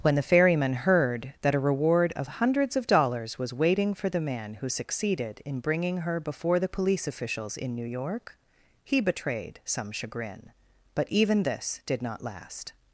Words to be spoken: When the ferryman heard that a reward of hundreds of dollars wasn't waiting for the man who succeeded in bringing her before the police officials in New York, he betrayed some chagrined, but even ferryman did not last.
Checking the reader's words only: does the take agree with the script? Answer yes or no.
no